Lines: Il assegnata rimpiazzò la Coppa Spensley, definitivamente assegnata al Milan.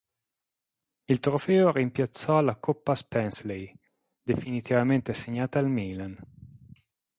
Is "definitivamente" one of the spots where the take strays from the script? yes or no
no